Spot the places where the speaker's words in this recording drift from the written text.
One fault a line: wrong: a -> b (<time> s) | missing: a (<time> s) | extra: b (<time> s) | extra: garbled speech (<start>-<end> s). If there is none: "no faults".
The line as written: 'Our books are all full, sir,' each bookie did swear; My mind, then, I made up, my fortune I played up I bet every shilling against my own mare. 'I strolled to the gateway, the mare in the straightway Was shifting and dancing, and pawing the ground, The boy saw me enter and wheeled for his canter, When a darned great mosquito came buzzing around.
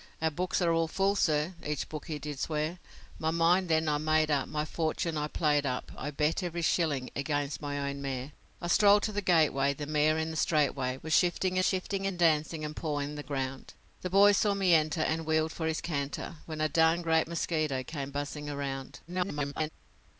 extra: shifting (11.6 s)
extra: garbled speech (19.1-19.7 s)